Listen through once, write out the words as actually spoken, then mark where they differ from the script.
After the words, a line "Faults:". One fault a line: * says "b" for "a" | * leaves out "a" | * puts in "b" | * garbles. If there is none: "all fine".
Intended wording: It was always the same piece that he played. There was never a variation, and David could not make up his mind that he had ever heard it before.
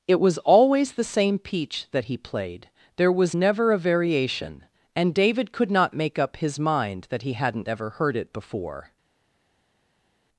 It was always the same peach that he played. There was never a variation, and David could not make up his mind that he hadn't ever heard it before.
Faults:
* says "peach" for "piece"
* says "hadn't" for "had"